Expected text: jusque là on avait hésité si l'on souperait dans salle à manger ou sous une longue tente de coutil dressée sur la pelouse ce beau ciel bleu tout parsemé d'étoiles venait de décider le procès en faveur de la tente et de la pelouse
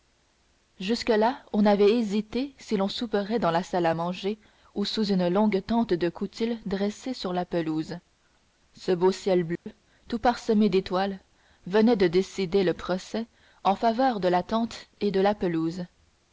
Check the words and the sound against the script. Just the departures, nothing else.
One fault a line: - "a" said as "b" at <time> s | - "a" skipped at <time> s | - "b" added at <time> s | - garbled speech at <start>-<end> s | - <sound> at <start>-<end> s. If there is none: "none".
- "la" added at 3.5 s
- dropout at 9.6-9.7 s